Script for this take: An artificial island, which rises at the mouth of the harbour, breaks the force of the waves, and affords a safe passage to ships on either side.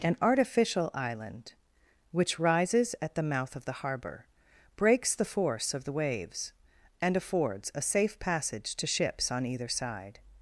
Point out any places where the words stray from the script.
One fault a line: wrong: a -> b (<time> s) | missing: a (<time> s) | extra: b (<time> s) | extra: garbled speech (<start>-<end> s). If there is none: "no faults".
no faults